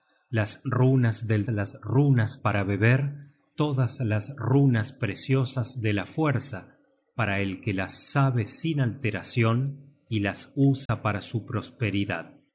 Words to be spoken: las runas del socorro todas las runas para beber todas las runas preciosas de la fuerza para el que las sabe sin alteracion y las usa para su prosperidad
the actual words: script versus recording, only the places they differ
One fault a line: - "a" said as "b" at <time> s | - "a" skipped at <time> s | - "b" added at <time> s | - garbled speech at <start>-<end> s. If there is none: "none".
- "socorro todas" skipped at 1.5 s